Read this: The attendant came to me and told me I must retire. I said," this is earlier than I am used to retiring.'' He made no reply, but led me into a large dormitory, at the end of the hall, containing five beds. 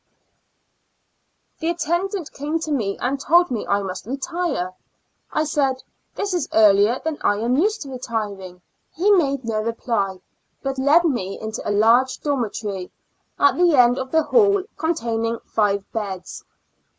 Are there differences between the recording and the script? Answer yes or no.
no